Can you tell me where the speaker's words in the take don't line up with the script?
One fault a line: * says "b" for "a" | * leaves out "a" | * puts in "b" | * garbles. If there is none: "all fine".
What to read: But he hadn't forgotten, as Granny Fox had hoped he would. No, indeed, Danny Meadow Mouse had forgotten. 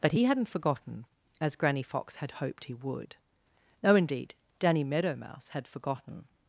all fine